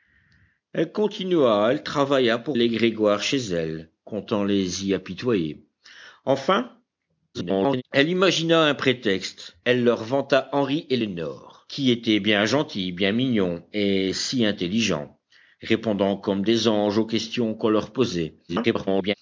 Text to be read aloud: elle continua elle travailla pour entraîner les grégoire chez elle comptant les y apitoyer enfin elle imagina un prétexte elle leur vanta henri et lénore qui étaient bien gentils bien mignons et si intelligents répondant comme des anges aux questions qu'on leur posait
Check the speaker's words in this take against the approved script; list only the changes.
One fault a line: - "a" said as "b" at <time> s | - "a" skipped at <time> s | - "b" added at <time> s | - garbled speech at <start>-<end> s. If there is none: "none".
- "entraîner" skipped at 2.6 s
- garbled speech at 7.3-7.8 s
- garbled speech at 18.5-19.1 s